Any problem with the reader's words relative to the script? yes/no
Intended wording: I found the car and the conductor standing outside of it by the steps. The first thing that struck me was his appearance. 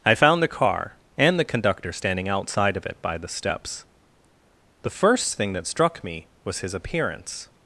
no